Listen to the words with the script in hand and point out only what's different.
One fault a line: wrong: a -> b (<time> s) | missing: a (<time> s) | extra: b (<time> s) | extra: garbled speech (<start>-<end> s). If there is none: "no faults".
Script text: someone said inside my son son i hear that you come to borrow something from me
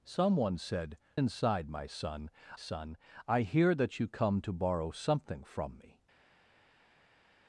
no faults